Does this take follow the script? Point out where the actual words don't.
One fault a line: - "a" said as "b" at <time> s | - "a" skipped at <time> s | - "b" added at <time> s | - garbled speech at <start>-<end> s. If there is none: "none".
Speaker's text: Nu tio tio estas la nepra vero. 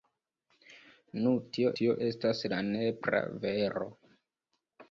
none